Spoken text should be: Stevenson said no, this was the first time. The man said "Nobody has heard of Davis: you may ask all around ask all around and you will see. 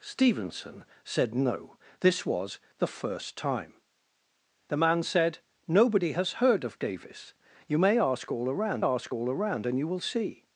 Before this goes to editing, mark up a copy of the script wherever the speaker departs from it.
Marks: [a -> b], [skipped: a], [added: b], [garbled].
Stevenson said no, this was the first time. The man said "Nobody has heard of Davis: you may ask all around ask all around and you will see.